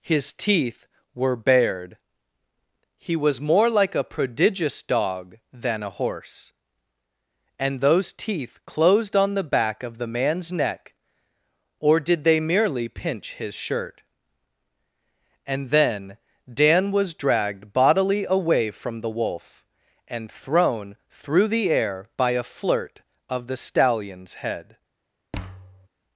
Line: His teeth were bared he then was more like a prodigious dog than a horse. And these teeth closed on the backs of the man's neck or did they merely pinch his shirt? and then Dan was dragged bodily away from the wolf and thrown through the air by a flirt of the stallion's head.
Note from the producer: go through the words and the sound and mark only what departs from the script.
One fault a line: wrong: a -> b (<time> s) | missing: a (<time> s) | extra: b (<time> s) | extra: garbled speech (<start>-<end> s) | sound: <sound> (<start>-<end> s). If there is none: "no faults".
missing: then (3.1 s)
wrong: these -> those (7.8 s)
wrong: backs -> back (9.4 s)
sound: thud (25.3-25.9 s)